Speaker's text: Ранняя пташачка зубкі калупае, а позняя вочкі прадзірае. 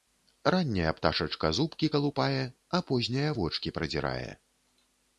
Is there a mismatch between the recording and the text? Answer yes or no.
no